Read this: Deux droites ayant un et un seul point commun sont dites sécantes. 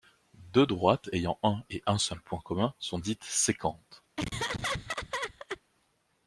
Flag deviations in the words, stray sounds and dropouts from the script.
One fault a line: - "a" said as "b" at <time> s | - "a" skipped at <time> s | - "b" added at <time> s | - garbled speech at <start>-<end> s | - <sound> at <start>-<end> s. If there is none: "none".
- laugh at 4.2-5.6 s